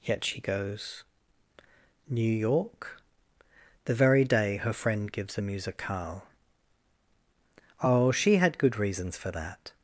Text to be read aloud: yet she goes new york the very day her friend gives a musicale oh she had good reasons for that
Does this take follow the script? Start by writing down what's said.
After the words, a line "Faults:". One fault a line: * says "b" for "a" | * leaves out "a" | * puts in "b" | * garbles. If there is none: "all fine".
yet she goes new york the very day her friend gives a musicale oh she had good reasons for that
Faults:
all fine